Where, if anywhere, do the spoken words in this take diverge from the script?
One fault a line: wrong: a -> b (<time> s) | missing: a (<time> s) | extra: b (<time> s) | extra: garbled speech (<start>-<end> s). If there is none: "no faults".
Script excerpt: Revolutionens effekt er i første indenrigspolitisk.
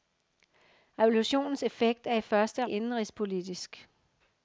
no faults